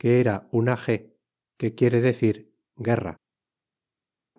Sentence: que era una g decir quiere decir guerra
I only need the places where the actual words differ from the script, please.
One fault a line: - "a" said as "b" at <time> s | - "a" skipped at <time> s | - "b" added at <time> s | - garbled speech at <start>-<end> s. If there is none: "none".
- "decir" said as "que" at 1.6 s